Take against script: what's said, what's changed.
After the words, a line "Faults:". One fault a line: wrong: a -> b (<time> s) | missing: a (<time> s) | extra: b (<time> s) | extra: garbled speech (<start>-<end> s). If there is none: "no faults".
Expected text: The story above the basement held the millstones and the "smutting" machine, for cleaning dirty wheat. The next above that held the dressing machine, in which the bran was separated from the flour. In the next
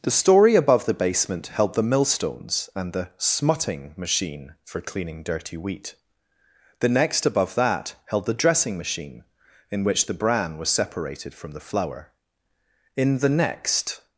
The story above the basement held the millstones and the "smutting" machine, for cleaning dirty wheat. The next above that held the dressing machine, in which the bran was separated from the flour. In the next
Faults:
no faults